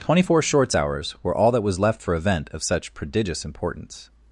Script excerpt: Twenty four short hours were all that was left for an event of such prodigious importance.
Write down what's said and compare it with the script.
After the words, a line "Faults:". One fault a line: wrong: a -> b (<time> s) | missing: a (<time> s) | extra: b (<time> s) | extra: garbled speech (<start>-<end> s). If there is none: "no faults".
Twenty four shorts hours were all that was left for event of such prodigious importance.
Faults:
wrong: short -> shorts (0.4 s)
missing: an (2.1 s)